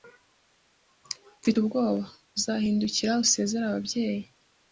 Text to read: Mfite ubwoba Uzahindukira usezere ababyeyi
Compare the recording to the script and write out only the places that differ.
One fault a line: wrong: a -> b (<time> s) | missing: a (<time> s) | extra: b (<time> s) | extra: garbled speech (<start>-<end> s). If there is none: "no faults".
no faults